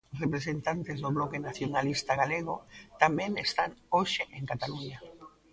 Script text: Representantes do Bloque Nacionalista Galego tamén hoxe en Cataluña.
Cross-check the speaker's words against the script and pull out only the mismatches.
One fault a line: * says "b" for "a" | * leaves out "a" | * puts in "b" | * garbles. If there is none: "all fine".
* puts in "están"